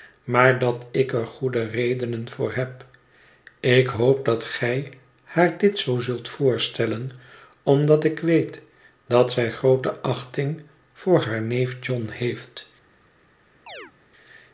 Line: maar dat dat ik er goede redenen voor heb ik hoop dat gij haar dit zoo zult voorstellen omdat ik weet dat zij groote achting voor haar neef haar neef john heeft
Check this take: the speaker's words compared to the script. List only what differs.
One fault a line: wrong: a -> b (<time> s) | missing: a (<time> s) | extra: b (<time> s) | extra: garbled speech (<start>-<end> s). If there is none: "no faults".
missing: dat (0.8 s)
missing: haar neef (11.8 s)